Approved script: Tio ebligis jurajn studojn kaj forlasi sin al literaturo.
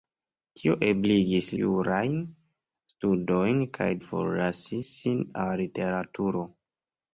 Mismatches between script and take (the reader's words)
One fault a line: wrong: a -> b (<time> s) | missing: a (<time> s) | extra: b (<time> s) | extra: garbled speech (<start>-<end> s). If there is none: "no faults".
no faults